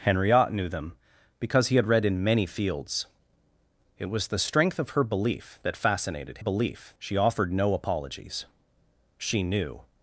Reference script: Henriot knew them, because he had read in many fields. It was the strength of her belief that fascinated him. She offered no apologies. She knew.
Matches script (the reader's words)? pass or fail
fail